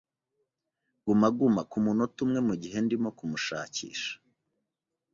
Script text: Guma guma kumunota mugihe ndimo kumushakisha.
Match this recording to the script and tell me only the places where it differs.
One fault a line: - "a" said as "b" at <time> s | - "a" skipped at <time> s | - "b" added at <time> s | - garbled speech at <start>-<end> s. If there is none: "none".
- "umwe" added at 2.2 s